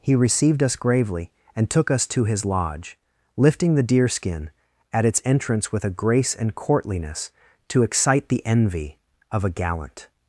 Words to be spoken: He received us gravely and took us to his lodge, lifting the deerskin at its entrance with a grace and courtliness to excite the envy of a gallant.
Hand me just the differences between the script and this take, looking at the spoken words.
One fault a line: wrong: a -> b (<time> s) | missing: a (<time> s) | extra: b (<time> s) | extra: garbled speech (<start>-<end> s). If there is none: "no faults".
no faults